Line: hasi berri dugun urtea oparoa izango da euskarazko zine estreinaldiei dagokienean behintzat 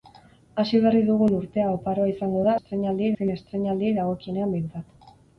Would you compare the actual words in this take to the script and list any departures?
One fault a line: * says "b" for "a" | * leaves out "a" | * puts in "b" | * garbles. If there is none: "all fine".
* says "estreinaldiei" for "euskarazko"